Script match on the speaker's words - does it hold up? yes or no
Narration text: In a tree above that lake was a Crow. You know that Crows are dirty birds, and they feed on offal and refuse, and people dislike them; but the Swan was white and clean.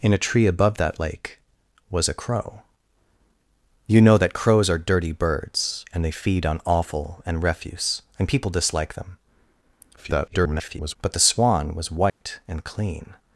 no